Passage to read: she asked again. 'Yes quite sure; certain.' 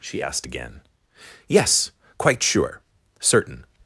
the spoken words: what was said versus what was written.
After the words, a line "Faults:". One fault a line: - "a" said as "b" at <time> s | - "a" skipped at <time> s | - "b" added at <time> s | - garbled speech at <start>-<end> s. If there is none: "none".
she asked again. 'Yes quite sure; certain.'
Faults:
none